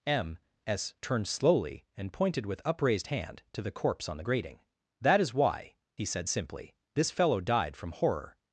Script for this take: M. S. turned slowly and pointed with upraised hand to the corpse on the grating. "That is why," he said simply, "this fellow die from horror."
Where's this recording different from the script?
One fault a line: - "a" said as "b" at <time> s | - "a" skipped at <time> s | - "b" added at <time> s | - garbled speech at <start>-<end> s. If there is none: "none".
- "die" said as "died" at 7.4 s